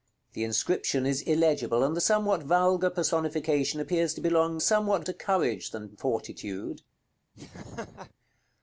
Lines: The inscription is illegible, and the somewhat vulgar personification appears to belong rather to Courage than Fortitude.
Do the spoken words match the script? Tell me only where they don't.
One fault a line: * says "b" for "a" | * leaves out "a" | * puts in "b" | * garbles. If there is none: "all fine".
* says "somewhat" for "rather"